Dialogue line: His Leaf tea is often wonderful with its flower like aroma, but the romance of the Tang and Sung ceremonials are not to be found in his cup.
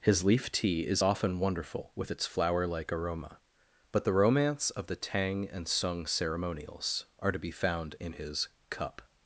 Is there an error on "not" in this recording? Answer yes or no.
yes